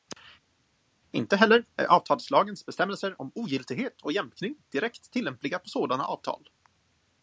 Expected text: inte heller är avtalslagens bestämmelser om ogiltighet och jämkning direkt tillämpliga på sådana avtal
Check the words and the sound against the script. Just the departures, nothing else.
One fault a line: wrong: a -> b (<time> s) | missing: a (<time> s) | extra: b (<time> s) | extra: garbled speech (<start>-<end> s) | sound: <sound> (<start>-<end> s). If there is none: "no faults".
no faults